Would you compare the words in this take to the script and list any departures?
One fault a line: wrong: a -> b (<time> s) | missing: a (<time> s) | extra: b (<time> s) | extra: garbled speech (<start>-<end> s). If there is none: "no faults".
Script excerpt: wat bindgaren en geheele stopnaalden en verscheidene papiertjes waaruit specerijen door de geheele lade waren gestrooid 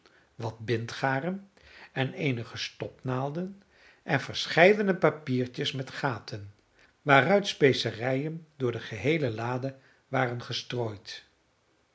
wrong: geheele -> eenige (2.1 s)
extra: met gaten (5.7 s)